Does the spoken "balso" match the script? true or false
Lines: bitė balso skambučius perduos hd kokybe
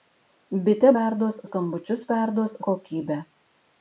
false